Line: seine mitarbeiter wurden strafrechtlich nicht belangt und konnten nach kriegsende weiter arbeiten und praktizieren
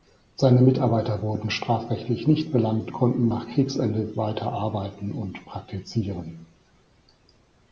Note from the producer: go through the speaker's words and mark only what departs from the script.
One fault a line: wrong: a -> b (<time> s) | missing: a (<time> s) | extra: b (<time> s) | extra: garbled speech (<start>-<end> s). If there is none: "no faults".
missing: und (2.9 s)